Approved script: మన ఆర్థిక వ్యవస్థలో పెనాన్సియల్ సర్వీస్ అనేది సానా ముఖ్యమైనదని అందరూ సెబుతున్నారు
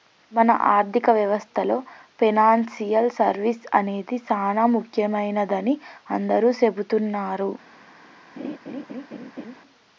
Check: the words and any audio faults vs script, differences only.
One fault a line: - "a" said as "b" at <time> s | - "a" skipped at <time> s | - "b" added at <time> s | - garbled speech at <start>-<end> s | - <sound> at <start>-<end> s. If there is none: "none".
- laugh at 8.4-9.6 s